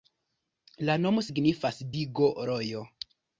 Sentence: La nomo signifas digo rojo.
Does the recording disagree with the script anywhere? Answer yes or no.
no